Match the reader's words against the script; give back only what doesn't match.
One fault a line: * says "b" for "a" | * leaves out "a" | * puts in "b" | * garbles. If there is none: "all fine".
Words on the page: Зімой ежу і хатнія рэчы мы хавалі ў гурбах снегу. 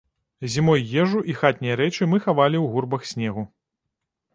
all fine